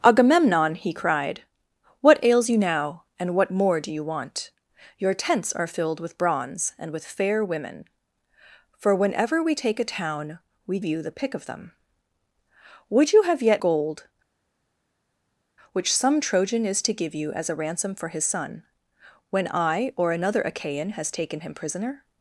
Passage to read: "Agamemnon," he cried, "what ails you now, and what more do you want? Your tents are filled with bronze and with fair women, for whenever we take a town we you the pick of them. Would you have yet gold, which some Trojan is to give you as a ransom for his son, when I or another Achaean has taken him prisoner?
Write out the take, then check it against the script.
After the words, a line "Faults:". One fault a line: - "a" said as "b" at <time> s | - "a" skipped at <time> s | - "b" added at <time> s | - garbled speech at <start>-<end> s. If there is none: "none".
"Agamemnon," he cried, "what ails you now, and what more do you want? Your tents are filled with bronze and with fair women, for whenever we take a town we you the pick of them. Would you have yet gold, which some Trojan is to give you as a ransom for his son, when I or another Achaean has taken him prisoner?
Faults:
none